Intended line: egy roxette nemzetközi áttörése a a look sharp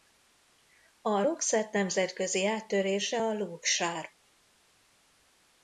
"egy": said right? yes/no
no